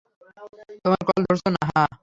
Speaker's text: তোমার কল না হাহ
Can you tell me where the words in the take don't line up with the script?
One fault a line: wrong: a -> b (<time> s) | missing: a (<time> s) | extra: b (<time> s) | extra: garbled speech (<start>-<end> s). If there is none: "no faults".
extra: ধরছে (1.2 s)